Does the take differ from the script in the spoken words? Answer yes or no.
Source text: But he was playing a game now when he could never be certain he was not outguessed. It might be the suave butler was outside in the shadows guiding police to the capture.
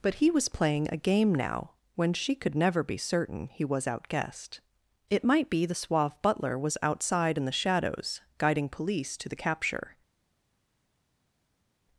yes